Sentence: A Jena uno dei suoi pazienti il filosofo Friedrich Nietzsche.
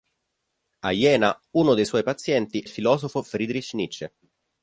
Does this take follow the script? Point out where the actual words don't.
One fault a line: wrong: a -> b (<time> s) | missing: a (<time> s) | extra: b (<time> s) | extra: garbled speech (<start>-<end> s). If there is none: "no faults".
no faults